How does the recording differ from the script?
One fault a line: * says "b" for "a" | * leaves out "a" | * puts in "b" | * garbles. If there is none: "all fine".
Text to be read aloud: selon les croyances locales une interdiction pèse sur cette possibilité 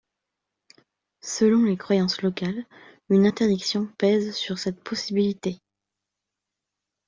all fine